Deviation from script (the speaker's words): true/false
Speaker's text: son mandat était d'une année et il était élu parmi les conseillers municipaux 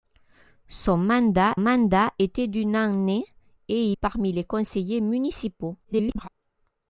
true